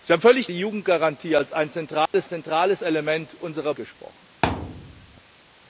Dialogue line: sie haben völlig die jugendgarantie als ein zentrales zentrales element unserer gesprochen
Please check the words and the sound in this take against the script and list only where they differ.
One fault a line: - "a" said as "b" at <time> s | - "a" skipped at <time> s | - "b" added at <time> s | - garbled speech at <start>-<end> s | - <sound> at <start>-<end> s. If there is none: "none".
- dropout at 2.1-2.1 s
- thud at 4.4-5.2 s